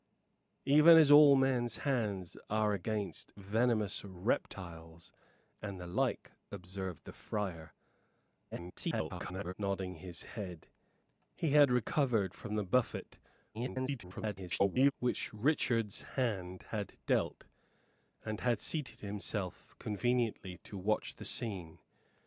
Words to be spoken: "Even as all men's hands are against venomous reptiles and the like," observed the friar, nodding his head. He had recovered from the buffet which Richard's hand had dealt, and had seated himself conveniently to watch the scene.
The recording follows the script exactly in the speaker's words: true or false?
false